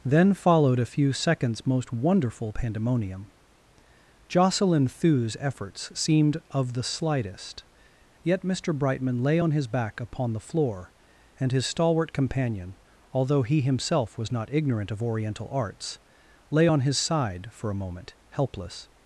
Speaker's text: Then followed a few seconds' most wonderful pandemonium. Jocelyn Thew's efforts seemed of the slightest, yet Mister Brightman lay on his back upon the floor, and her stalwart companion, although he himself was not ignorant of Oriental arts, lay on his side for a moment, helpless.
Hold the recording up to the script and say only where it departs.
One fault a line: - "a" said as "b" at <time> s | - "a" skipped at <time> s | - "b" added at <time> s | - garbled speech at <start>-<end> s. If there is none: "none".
- "her" said as "his" at 11.5 s